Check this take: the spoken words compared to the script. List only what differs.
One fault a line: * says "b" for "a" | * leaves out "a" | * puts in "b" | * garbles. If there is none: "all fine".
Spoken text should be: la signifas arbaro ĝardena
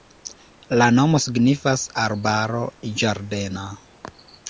* puts in "nomo"